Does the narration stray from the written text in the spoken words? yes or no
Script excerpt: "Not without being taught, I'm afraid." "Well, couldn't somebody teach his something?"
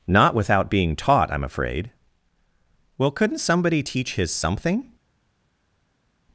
no